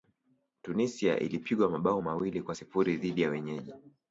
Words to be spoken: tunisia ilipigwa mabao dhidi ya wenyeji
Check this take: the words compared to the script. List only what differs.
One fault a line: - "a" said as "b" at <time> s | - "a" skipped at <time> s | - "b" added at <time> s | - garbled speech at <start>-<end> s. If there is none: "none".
- "mawili kwa sifuri" added at 2.0 s